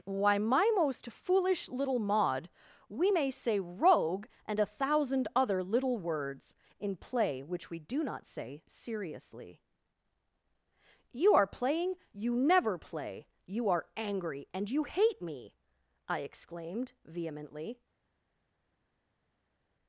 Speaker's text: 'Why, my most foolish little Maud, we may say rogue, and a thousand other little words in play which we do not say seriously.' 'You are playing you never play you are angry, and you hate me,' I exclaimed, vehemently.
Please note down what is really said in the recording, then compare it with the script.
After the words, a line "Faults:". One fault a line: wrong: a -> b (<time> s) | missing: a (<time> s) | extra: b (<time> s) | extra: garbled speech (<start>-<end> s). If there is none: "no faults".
'Why, my most foolish little Maud, we may say rogue, and a thousand other little words in play which we do not say seriously.' 'You are playing you never play you are angry, and you hate me,' I exclaimed, vehemently.
Faults:
no faults